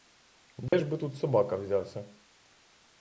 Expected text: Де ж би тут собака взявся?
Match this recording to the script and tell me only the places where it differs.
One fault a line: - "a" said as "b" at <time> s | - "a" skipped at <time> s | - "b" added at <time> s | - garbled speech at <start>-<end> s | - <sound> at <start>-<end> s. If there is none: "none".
- dropout at 0.7-0.7 s